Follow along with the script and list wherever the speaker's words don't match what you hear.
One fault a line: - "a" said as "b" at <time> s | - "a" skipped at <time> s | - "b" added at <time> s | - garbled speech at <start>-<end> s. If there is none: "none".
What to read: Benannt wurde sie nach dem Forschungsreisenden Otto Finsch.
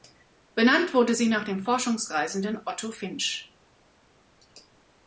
none